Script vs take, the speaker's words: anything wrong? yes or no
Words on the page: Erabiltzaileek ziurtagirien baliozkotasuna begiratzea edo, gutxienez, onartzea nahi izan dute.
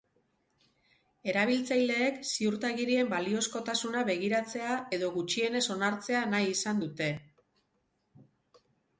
no